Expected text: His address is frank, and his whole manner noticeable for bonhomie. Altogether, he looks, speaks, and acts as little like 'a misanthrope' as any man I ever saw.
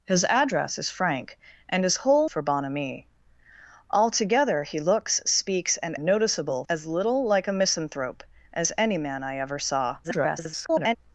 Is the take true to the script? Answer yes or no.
no